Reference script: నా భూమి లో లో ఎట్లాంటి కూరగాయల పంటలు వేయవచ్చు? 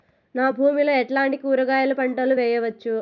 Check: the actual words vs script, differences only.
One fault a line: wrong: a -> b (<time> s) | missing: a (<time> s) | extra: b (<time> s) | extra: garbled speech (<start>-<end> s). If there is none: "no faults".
missing: లో (0.9 s)